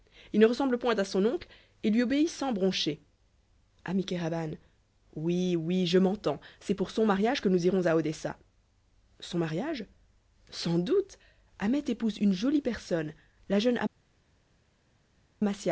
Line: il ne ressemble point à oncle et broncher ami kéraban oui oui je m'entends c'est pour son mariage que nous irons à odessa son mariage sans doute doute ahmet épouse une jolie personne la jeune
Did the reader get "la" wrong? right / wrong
right